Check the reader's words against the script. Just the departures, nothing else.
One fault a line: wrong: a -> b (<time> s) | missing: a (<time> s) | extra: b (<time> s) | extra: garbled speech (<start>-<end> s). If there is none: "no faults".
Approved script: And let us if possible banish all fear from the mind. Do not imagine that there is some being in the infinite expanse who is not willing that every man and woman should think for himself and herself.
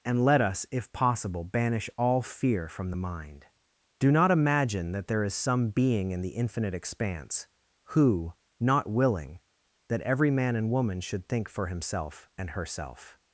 missing: is (8.3 s)